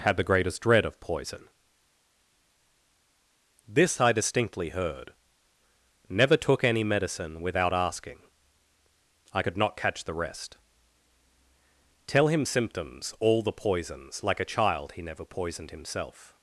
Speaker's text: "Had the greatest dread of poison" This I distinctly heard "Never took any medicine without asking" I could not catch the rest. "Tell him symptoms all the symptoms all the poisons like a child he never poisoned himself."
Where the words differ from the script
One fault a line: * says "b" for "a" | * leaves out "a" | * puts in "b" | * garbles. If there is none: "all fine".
* leaves out "symptoms all the"